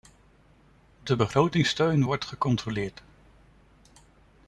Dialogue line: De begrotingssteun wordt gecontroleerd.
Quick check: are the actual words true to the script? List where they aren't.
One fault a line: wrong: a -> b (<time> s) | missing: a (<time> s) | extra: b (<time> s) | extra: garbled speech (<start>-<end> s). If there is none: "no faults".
no faults